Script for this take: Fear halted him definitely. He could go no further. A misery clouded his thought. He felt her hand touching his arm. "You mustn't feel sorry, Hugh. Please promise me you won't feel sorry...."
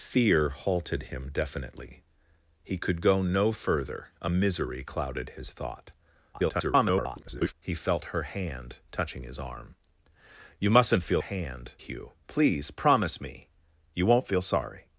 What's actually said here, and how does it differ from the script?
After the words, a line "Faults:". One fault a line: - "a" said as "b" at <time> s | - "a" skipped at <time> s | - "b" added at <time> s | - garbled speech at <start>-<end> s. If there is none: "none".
Fear halted him definitely. He could go no further. A misery clouded his thought. [garbled] He felt her hand touching his arm. "You mustn't feel hand, Hugh. Please promise me you won't feel sorry...."
Faults:
- garbled speech at 6.3-7.5 s
- "sorry" said as "hand" at 11.2 s